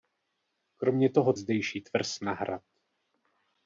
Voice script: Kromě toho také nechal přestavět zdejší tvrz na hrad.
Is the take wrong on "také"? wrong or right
wrong